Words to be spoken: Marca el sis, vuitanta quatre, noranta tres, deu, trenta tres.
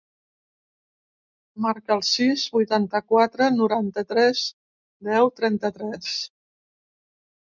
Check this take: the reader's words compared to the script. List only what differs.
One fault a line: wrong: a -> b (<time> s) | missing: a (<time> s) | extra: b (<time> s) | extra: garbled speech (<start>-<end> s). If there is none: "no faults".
no faults